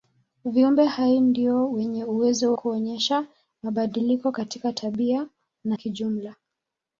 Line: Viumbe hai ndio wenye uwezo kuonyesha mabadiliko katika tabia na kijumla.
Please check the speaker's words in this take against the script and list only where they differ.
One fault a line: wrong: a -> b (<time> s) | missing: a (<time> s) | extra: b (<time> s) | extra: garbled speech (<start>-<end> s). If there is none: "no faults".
no faults